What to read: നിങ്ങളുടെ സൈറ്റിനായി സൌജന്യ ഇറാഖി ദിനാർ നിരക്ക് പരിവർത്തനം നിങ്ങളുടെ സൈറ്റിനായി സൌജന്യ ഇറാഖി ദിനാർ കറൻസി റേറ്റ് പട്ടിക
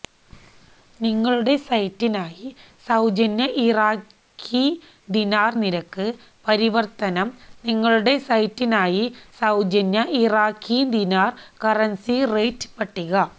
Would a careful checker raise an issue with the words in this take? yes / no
no